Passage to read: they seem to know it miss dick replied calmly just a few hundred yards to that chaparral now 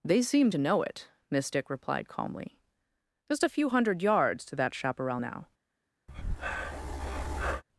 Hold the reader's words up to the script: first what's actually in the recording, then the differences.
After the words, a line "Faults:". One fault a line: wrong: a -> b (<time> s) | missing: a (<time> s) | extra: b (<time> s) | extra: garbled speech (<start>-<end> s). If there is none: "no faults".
they seem to know it miss dick replied calmly just a few hundred yards to that chaparral now
Faults:
no faults